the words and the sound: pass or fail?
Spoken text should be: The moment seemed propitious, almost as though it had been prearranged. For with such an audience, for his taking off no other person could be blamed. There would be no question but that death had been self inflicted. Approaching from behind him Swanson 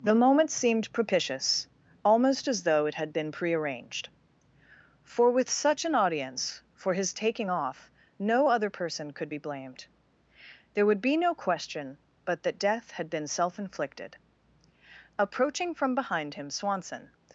pass